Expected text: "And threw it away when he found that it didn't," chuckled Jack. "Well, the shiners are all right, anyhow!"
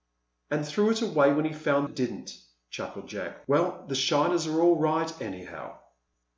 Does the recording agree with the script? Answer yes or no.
no